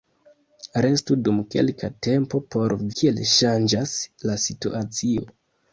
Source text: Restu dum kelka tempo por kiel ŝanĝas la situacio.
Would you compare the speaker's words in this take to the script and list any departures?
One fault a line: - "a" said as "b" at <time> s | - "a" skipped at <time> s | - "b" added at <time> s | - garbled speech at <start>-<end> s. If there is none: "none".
none